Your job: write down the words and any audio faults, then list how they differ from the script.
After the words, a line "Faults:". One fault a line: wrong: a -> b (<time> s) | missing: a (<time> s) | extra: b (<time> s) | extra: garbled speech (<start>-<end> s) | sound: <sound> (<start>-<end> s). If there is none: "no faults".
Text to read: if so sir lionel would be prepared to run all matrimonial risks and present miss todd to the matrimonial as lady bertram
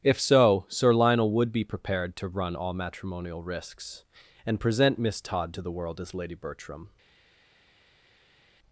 if so sir lionel would be prepared to run all matrimonial risks and present miss todd to the world as lady bertram
Faults:
wrong: matrimonial -> world (5.7 s)